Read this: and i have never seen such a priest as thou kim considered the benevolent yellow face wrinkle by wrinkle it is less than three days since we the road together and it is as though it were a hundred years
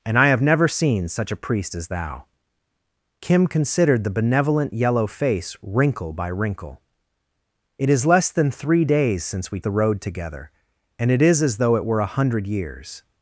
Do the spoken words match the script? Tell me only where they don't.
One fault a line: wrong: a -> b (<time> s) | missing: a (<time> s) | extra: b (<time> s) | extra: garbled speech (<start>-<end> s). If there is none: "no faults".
no faults